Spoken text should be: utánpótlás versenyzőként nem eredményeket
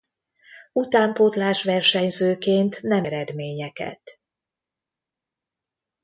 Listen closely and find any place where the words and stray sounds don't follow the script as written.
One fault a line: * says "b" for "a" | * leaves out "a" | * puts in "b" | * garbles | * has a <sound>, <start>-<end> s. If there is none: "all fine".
all fine